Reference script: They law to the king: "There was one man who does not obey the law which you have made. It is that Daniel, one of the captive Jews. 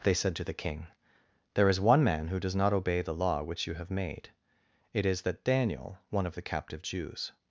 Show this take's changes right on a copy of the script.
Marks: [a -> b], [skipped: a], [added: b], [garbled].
They [law -> said] to the king: "There [was -> is] one man who does not obey the law which you have made. It is that Daniel, one of the captive Jews.